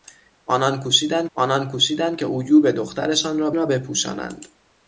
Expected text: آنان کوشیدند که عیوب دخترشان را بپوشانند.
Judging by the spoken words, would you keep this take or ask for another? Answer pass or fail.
fail